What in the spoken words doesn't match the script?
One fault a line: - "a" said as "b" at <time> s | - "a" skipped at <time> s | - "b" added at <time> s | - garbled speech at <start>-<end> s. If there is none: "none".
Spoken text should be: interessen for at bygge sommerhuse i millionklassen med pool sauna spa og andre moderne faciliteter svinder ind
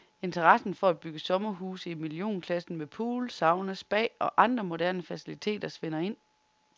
none